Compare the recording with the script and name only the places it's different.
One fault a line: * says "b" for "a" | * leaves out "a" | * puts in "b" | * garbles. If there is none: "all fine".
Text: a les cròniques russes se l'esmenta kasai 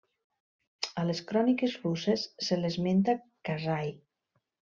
all fine